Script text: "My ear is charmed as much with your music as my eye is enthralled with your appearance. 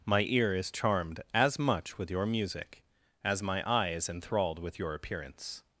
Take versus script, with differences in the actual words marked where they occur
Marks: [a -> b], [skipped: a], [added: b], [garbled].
"My ear is charmed as much with your music as my eye is enthralled with your appearance.